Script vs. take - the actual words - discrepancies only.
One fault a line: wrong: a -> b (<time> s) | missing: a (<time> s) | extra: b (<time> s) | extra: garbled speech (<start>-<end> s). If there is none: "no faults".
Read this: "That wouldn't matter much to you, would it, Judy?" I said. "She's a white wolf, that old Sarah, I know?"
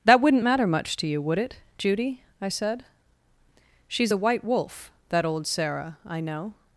no faults